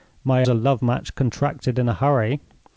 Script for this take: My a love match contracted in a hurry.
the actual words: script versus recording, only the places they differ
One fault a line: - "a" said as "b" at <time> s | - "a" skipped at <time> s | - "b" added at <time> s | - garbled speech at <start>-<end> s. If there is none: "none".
none